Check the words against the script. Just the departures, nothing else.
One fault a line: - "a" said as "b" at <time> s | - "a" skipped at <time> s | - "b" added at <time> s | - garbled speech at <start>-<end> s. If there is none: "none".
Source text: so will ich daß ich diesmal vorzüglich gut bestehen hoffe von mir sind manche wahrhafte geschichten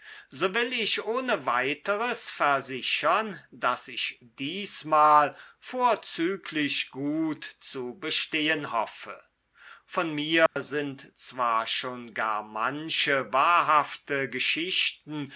- "ohne weiteres versichern" added at 1.1 s
- "zu" added at 7.6 s
- "zwar schon gar" added at 11.2 s